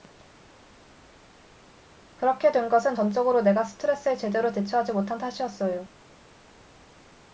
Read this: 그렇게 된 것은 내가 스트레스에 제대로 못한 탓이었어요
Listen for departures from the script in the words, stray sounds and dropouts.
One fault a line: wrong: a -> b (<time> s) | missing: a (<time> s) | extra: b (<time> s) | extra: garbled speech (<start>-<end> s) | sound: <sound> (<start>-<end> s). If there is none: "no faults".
extra: 전적으로 (2.9 s)
extra: 대처하지 (4.5 s)